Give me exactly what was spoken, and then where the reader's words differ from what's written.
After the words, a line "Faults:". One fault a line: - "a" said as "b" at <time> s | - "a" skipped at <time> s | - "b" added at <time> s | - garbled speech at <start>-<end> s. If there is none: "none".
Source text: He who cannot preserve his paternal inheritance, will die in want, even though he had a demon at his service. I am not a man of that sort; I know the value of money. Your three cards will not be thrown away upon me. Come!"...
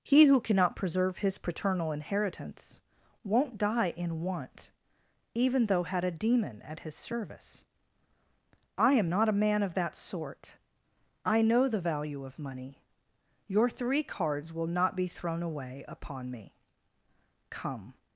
He who cannot preserve his paternal inheritance, won't die in want, even though had a demon at his service. I am not a man of that sort; I know the value of money. Your three cards will not be thrown away upon me. Come!"...
Faults:
- "will" said as "won't" at 3.2 s
- "he" skipped at 5.8 s